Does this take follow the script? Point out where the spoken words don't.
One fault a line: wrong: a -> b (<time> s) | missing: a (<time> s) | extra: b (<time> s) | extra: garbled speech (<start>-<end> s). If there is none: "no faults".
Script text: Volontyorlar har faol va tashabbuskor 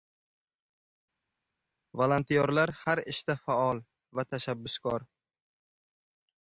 extra: ishda (3.1 s)